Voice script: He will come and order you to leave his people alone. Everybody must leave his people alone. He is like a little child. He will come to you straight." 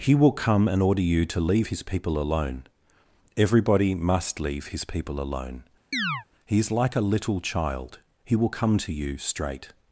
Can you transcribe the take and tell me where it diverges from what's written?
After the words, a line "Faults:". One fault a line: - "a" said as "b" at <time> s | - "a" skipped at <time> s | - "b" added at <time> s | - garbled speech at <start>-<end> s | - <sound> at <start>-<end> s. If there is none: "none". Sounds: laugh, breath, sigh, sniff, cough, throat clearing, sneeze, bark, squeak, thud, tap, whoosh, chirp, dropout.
He will come and order you to leave his people alone. Everybody must leave his people alone. He is like a little child. He will come to you straight."
Faults:
- chirp at 5.9-6.3 s